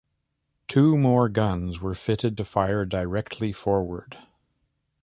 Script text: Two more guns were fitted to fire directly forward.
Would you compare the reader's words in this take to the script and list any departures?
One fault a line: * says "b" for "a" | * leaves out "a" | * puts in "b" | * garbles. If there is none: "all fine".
all fine